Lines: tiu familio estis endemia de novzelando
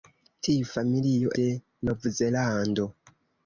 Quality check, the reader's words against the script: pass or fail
fail